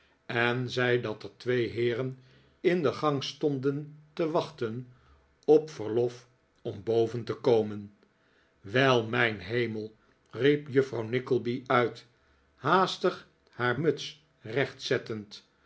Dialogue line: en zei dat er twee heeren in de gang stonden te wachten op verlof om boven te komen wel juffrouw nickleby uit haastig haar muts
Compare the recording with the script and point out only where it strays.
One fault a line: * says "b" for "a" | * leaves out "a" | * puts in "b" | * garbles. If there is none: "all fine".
* puts in "mijn hemel riep"